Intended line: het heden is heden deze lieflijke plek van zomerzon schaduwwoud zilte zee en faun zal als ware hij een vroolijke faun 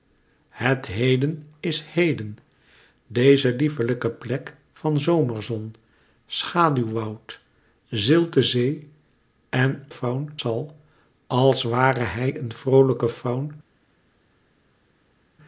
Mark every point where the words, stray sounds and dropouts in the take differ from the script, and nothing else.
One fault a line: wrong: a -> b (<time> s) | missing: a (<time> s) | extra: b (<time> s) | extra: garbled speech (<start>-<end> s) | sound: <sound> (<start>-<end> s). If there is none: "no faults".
no faults